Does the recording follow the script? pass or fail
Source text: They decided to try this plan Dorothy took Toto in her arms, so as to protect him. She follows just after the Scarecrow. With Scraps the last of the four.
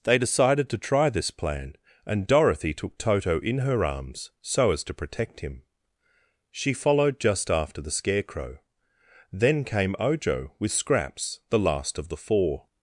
fail